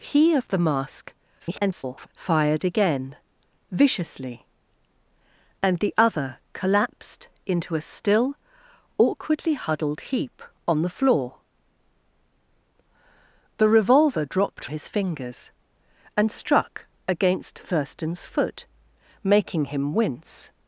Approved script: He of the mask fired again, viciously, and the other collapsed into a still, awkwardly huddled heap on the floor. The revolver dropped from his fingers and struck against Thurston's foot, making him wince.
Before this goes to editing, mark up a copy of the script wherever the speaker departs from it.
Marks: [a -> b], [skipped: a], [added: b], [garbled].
He of the mask [garbled] fired again, viciously, and the other collapsed into a still, awkwardly huddled heap on the floor. The revolver dropped [skipped: from] his fingers and struck against Thurston's foot, making him wince.